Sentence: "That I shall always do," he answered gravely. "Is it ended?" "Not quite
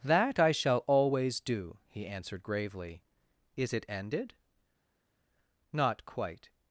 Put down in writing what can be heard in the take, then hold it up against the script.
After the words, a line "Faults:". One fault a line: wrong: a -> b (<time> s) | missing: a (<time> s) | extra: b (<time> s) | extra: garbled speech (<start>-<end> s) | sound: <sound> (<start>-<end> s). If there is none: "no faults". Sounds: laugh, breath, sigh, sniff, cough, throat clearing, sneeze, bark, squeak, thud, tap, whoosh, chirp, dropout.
"That I shall always do," he answered gravely. "Is it ended?" "Not quite
Faults:
no faults